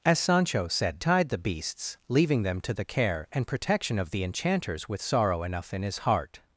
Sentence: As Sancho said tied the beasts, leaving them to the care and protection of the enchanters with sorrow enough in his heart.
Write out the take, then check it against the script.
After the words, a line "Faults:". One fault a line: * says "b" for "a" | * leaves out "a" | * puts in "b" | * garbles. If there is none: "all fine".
As Sancho said tied the beasts, leaving them to the care and protection of the enchanters with sorrow enough in his heart.
Faults:
all fine